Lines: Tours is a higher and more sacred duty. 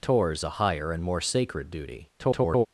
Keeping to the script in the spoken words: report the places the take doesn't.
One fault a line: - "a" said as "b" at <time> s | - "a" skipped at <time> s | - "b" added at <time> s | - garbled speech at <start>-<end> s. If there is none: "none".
- "is" skipped at 0.4 s
- garbled speech at 2.2-2.7 s